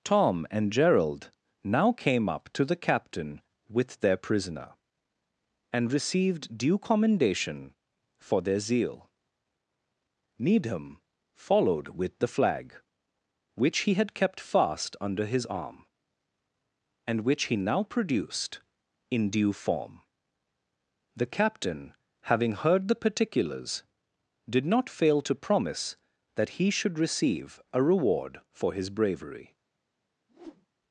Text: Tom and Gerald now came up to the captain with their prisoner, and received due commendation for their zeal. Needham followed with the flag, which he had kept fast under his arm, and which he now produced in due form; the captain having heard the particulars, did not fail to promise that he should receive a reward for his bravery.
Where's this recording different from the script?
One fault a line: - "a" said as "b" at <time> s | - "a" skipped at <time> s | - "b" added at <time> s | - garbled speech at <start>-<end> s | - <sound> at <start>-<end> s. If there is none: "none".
- whoosh at 30.3-30.7 s